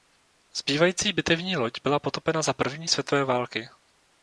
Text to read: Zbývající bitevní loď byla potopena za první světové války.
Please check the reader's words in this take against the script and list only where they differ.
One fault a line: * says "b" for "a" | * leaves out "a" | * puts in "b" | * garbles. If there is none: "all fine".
all fine